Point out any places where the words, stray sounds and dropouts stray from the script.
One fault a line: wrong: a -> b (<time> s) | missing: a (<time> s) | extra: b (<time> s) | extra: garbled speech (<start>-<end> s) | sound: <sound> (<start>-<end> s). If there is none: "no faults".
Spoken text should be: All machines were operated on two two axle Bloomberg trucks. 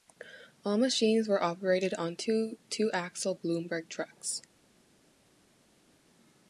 no faults